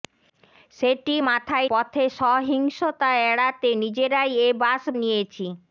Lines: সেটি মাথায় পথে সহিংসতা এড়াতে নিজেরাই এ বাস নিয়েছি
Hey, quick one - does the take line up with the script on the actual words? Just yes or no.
yes